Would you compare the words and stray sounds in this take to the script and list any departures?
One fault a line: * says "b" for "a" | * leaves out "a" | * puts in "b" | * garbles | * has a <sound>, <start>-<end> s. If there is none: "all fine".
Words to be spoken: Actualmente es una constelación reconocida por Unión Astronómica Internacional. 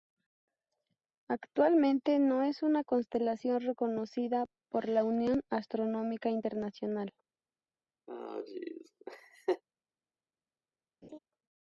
* puts in "no"
* puts in "la"
* has a laugh, 8.1-9.6 s
* has a laugh, 11.0-11.2 s